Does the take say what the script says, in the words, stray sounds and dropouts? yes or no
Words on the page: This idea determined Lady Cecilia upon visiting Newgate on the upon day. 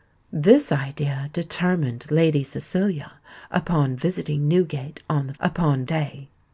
yes